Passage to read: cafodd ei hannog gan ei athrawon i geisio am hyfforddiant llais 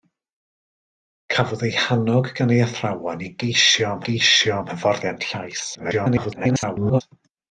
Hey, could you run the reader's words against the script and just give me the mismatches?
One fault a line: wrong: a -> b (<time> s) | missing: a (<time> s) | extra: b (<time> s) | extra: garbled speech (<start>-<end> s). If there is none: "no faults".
extra: geisio am (4.1 s)
extra: garbled speech (5.7-7.0 s)